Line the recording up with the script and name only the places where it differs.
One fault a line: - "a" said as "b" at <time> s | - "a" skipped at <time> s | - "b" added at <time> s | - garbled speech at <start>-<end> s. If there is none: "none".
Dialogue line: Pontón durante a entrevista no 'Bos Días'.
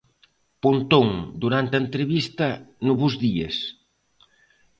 none